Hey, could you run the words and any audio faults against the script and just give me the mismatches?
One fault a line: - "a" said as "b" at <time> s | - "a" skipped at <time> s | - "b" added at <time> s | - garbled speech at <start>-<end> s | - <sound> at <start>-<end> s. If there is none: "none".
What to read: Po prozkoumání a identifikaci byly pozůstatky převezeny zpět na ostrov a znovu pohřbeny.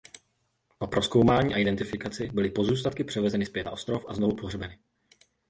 none